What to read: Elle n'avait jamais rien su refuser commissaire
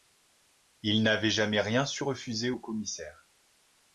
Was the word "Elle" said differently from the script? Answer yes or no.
yes